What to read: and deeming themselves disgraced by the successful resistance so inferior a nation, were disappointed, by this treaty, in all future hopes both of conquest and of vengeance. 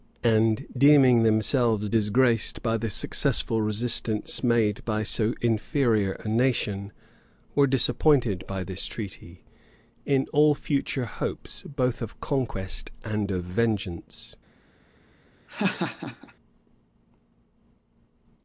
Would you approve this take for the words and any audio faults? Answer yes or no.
no